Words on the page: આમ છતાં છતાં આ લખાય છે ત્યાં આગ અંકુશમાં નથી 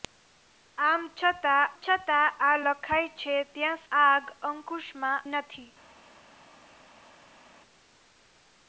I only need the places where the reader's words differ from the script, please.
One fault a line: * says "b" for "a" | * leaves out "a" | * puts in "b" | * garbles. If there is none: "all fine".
all fine